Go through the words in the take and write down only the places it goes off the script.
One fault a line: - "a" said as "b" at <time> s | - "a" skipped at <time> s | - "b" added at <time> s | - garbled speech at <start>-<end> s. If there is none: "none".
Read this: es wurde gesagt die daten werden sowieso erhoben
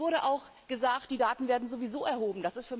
- "auch" added at 0.2 s